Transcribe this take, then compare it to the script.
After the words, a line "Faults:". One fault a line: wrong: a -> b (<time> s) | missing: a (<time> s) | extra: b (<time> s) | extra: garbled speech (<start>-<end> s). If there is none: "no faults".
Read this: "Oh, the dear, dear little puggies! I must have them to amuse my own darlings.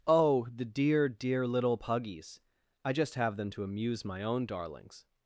"Oh, the dear, dear little puggies! I just have them to amuse my own darlings.
Faults:
wrong: must -> just (2.9 s)